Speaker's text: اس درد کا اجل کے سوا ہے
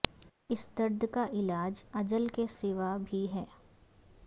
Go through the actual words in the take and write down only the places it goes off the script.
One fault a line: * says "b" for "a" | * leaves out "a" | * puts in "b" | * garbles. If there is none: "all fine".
* puts in "علاج"
* puts in "بھی"